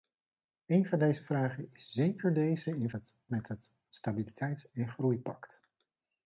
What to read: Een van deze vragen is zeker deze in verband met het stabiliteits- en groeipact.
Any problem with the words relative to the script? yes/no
yes